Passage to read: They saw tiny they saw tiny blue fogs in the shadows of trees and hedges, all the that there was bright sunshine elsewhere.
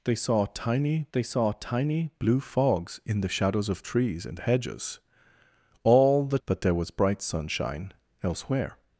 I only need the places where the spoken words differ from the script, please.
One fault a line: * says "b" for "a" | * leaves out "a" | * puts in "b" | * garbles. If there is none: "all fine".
all fine